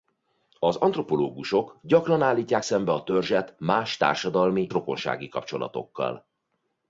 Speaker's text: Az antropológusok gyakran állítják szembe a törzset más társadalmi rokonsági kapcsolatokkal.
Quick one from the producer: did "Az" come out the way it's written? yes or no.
yes